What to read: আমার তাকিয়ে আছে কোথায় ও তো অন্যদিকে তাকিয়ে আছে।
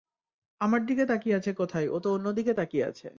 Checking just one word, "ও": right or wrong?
right